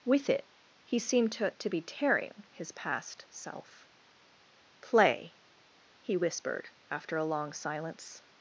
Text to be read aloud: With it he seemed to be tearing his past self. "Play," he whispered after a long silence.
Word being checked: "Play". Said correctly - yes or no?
yes